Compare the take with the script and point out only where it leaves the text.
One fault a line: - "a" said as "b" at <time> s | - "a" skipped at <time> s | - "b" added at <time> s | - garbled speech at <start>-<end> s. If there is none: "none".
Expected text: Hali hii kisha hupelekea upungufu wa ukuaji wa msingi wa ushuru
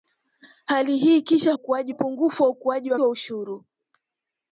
- "hupelekea" said as "ukuaji" at 1.5 s
- "msingi" skipped at 3.0 s